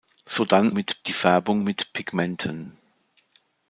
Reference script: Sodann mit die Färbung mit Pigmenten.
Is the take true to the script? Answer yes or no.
yes